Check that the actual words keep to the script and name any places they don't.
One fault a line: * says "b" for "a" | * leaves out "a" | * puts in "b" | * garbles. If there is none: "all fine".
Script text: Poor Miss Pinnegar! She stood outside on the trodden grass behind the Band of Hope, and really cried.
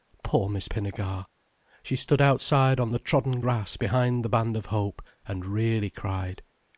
all fine